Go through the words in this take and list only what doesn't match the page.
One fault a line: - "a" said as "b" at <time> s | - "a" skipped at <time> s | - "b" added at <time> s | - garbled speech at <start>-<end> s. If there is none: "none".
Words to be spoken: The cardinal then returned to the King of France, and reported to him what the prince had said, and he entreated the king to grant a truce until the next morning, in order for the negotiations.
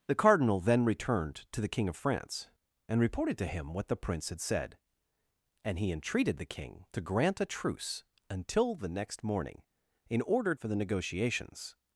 none